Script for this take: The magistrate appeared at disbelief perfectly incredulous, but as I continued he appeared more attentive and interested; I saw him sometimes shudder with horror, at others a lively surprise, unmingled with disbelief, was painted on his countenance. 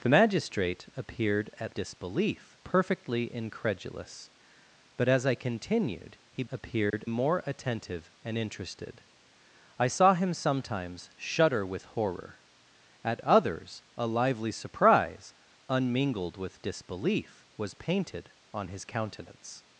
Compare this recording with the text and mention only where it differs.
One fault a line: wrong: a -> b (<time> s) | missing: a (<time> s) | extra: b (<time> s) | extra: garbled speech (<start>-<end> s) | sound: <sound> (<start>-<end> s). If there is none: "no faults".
sound: dropout (6.9-6.9 s)